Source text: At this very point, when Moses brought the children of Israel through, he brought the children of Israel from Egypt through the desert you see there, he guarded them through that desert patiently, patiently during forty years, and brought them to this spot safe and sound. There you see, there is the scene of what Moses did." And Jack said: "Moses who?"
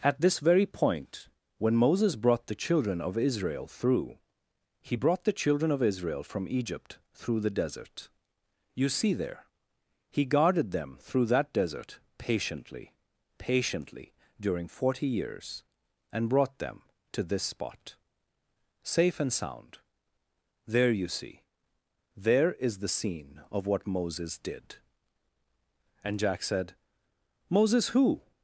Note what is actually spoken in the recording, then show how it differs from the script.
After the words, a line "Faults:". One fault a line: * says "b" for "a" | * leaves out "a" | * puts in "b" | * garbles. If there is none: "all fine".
At this very point, when Moses brought the children of Israel through, he brought the children of Israel from Egypt through the desert you see there, he guarded them through that desert patiently, patiently during forty years, and brought them to this spot safe and sound. There you see, there is the scene of what Moses did." And Jack said: "Moses who?"
Faults:
all fine